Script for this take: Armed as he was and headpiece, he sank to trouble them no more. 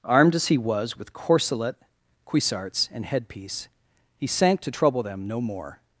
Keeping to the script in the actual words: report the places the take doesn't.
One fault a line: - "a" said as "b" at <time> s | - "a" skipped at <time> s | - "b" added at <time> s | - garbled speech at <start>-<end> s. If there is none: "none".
- "with corselet cuissarts" added at 1.0 s